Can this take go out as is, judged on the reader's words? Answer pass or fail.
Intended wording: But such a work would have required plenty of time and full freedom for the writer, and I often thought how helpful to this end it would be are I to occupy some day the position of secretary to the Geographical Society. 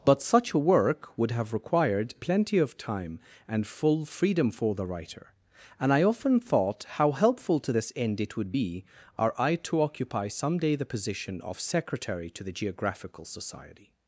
pass